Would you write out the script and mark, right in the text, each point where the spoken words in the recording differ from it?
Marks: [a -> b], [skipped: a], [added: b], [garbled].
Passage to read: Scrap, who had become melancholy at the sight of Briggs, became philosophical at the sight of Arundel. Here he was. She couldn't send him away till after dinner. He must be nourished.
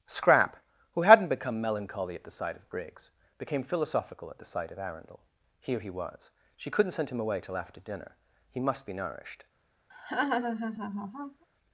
Scrap, who [had -> hadn't] become melancholy at the sight of Briggs, became philosophical at the sight of Arundel. Here he was. She couldn't send him away till after dinner. He must be nourished.